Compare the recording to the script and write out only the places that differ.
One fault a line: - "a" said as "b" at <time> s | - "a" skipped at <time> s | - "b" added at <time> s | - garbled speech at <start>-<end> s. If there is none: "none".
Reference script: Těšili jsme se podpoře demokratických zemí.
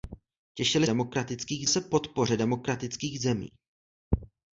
- "jsme" said as "demokratických" at 0.8 s